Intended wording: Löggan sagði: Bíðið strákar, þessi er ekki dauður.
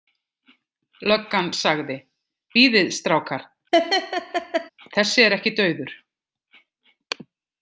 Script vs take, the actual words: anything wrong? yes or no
no